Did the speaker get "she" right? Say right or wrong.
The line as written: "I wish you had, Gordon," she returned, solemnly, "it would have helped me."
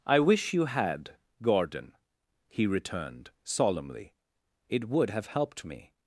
wrong